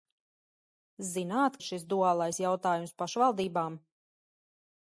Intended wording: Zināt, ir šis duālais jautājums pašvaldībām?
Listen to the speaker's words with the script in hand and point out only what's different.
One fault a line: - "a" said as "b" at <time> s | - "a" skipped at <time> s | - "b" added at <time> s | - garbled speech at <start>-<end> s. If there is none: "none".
none